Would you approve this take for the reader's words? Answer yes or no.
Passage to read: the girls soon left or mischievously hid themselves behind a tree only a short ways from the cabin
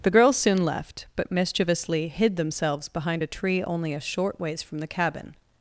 no